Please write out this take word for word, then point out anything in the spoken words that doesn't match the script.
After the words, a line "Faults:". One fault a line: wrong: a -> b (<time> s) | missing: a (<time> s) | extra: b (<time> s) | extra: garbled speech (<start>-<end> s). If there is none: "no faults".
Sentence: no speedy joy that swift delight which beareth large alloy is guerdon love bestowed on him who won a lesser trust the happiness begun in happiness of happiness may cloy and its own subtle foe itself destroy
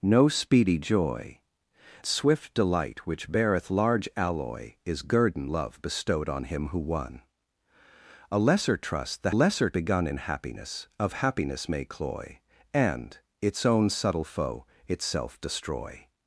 no speedy joy swift delight which beareth large alloy is guerdon love bestowed on him who won a lesser trust the lesser begun in happiness of happiness may cloy and its own subtle foe itself destroy
Faults:
missing: that (1.4 s)
wrong: happiness -> lesser (9.3 s)